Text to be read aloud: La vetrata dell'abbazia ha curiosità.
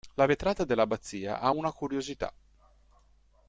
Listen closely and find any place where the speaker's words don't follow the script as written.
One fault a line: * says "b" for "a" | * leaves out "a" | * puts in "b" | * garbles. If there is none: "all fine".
* puts in "una"